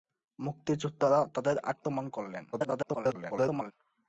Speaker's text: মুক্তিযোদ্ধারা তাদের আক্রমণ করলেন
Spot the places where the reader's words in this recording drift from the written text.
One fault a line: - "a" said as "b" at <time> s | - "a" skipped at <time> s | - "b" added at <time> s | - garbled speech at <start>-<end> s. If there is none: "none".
- garbled speech at 2.5-3.7 s